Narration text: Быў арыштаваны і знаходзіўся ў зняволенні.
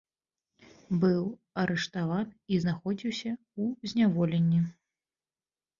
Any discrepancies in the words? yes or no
no